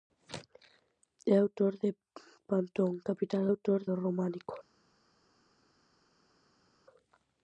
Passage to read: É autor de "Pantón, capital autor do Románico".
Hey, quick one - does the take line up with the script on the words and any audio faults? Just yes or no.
yes